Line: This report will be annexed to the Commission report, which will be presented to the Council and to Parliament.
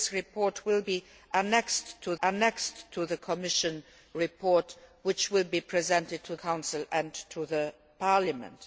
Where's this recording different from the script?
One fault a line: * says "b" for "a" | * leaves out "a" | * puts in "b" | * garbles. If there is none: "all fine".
* puts in "annexed to"
* leaves out "the"